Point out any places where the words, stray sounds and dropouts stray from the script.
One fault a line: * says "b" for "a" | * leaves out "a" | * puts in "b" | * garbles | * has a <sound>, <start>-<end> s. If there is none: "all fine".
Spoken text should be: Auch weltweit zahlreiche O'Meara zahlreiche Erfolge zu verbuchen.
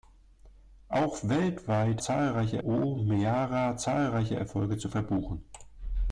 all fine